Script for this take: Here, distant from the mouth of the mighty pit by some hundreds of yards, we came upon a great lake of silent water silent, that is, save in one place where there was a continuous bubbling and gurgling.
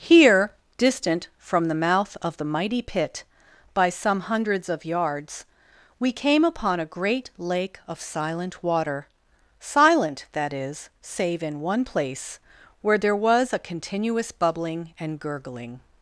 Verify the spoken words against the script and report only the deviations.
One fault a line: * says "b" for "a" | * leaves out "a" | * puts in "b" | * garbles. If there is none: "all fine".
all fine